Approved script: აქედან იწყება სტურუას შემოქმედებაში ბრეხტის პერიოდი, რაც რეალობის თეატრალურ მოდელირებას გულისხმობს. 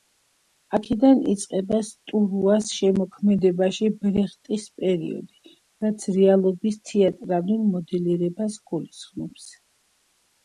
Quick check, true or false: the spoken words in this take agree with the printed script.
true